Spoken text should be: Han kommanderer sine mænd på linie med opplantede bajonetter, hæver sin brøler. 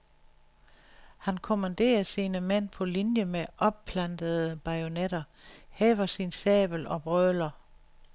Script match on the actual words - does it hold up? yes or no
no